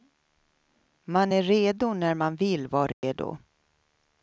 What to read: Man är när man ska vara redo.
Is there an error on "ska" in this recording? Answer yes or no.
yes